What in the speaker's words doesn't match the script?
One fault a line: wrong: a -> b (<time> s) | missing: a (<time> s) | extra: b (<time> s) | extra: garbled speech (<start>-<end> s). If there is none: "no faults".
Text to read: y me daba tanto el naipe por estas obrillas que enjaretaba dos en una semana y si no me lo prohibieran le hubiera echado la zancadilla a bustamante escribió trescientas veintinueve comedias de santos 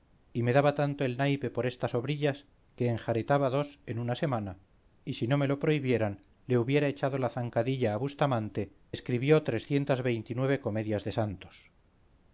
no faults